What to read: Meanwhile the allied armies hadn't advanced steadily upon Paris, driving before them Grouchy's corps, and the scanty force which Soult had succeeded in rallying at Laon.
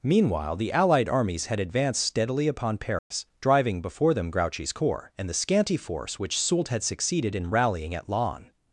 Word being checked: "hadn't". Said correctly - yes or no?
no